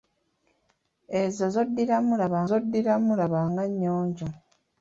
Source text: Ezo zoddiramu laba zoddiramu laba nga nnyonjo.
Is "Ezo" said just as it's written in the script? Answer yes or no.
yes